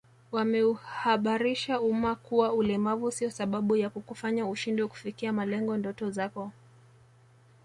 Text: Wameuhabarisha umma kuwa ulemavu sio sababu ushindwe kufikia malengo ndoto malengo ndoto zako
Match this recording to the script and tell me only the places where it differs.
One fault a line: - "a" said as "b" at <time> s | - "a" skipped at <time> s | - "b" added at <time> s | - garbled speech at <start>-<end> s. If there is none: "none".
- "ya kukufanya" added at 3.8 s
- "malengo ndoto" skipped at 6.1 s